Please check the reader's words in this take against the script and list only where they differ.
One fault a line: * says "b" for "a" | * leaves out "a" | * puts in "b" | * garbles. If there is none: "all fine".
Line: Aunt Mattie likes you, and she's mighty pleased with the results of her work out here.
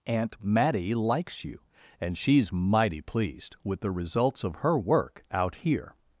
all fine